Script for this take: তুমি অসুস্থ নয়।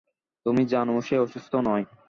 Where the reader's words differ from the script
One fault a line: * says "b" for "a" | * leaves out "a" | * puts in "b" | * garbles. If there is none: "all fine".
* puts in "জানো সে"